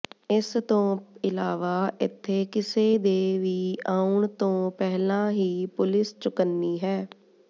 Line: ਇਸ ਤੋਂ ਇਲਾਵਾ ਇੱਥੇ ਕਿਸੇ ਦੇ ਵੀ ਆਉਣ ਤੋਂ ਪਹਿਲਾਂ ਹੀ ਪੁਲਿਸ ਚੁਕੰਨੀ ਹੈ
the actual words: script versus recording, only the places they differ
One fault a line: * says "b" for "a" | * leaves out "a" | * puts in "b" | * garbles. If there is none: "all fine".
all fine